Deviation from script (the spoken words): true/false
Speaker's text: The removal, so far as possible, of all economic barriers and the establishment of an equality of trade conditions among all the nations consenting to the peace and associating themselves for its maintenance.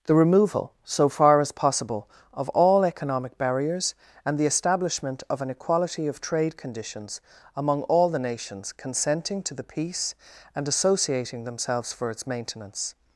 false